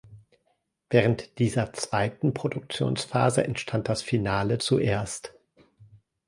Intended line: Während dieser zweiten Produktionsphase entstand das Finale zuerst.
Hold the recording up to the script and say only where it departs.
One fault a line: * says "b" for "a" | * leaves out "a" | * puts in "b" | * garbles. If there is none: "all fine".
all fine